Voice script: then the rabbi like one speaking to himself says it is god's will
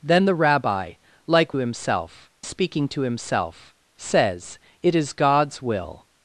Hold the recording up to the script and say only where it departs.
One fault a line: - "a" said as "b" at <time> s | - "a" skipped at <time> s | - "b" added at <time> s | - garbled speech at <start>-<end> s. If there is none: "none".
- "one" said as "himself" at 1.6 s